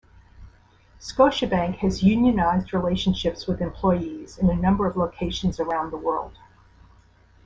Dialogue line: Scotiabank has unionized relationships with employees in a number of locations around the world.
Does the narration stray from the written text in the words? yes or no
no